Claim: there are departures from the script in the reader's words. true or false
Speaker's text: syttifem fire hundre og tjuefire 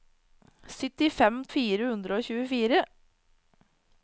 false